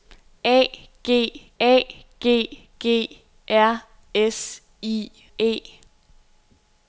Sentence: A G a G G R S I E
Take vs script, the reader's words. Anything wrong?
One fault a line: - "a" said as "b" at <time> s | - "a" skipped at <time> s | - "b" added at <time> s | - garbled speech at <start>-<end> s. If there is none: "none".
none